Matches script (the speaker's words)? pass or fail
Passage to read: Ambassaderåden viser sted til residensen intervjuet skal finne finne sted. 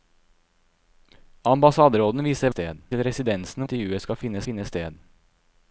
pass